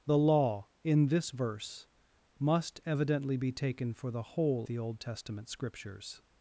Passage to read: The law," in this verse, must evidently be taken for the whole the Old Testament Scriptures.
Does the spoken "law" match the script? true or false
true